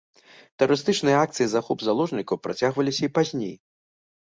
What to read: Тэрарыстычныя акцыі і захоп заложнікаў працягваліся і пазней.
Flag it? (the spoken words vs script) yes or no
no